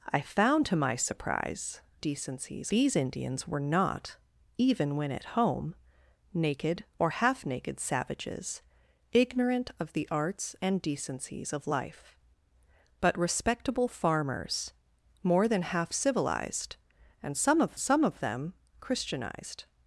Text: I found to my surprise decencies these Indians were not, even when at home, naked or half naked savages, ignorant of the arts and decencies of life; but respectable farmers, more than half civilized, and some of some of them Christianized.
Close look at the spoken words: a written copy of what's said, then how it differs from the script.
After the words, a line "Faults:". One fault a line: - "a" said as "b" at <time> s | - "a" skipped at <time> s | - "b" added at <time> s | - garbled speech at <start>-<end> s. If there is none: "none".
I found to my surprise decencies these Indians were not, even when at home, naked or half naked savages, ignorant of the arts and decencies of life; but respectable farmers, more than half civilized, and some of some of them Christianized.
Faults:
none